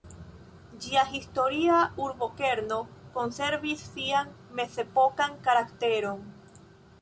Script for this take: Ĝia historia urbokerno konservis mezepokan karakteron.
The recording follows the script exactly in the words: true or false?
false